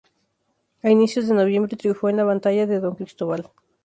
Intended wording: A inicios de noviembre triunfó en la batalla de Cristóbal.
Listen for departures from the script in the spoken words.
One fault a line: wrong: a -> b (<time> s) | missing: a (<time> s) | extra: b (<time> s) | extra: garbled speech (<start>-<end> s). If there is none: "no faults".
extra: Don (2.8 s)